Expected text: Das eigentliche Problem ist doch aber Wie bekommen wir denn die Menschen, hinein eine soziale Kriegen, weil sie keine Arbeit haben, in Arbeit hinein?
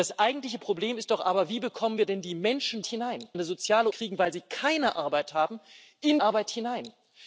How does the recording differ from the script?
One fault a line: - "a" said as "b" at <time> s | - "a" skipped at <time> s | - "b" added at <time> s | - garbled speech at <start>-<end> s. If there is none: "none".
none